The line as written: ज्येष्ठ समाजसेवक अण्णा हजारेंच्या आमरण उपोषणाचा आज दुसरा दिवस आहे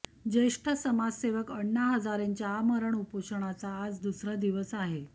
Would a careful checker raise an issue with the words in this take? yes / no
no